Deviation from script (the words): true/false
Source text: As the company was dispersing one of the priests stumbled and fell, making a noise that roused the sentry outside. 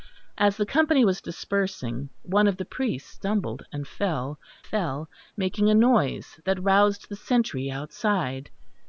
true